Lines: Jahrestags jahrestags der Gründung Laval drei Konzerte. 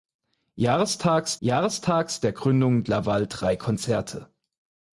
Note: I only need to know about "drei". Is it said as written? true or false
true